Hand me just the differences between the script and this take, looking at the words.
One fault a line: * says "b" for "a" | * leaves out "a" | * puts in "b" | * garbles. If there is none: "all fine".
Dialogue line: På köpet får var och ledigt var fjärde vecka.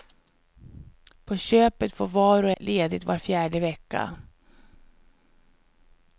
all fine